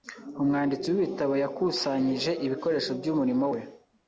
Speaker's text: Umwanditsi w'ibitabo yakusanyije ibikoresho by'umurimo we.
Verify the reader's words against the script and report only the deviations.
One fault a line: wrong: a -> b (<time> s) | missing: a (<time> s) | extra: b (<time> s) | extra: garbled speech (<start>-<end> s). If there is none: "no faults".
no faults